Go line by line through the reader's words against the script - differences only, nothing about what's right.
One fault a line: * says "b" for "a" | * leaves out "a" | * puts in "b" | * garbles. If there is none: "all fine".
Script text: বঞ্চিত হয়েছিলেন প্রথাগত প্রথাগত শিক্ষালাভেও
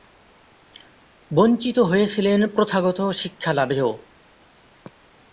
* leaves out "প্রথাগত"